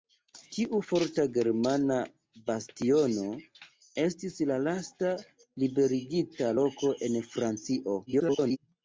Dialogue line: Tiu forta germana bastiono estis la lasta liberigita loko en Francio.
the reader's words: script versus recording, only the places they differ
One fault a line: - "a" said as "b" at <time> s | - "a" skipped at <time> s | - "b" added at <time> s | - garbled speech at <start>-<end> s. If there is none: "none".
- garbled speech at 8.1-8.6 s